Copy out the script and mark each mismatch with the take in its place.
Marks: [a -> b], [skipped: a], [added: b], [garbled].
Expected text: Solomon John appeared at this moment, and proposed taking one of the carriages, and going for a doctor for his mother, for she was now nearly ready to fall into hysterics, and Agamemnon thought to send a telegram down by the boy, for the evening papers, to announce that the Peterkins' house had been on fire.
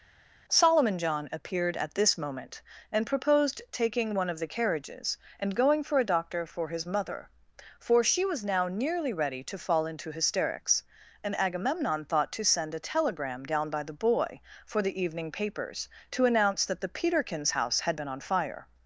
Solomon John appeared at this moment, and proposed taking one of the carriages, and going for a doctor for his mother, for she was now nearly ready to fall into hysterics, and Agamemnon thought to send a telegram down by the boy, for the evening papers, to announce that the Peterkins' house had been on fire.